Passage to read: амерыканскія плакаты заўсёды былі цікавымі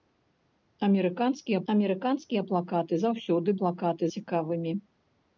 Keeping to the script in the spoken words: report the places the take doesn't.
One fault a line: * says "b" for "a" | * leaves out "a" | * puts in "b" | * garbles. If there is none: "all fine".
* puts in "амерыканскія"
* says "плакаты" for "былі"